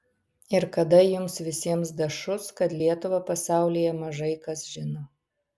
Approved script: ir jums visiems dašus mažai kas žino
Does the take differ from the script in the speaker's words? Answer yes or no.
yes